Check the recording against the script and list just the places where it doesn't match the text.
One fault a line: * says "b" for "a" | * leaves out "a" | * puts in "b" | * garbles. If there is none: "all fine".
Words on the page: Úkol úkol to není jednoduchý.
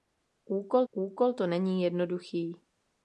all fine